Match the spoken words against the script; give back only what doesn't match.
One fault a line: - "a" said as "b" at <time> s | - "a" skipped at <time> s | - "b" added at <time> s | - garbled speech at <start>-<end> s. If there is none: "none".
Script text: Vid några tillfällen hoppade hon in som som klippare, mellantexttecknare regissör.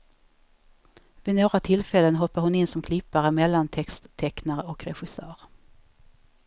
- "som" skipped at 2.8 s
- "och" added at 4.6 s